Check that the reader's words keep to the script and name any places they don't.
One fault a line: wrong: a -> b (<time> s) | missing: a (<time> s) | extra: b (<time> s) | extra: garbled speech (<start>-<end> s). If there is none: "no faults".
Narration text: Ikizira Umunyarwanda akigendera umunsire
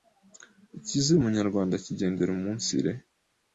no faults